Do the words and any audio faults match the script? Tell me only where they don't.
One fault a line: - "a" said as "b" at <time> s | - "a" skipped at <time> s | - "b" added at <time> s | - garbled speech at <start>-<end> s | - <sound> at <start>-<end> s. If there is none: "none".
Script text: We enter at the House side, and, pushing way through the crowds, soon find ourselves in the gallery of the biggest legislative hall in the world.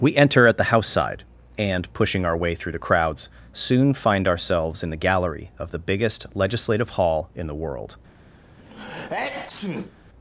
- "our" added at 2.2 s
- sneeze at 8.6-9.9 s